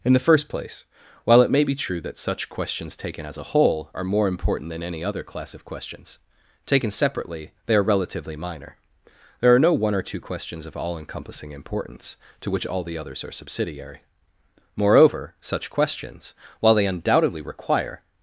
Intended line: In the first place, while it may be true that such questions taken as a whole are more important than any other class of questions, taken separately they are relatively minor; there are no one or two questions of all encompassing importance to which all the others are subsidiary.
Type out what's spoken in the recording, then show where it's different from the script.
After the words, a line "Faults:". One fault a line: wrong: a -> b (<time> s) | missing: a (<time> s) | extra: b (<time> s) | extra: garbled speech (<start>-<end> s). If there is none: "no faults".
In the first place, while it may be true that such questions taken as a whole are more important than any other class of questions, taken separately they are relatively minor; there are no one or two questions of all encompassing importance to which all the others are subsidiary. Moreover, such questions, while they undoubtedly require
Faults:
extra: Moreover such questions while they undoubtedly require (14.8 s)